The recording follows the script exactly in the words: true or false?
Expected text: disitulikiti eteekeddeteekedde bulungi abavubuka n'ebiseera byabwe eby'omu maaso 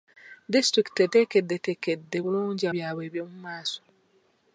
false